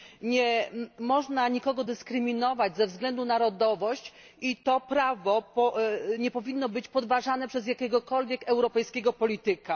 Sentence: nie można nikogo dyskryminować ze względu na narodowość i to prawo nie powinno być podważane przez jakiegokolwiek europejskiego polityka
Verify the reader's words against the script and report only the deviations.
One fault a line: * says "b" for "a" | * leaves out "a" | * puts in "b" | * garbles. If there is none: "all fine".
all fine